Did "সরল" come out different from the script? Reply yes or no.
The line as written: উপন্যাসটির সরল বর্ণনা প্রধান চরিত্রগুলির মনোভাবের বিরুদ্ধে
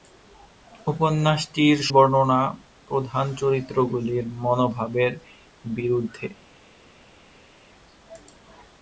yes